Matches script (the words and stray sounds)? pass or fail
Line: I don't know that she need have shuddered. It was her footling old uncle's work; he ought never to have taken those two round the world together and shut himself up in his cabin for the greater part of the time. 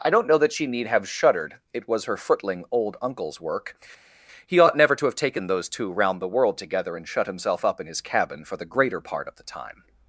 pass